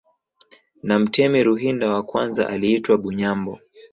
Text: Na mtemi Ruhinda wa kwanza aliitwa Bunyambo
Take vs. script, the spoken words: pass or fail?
pass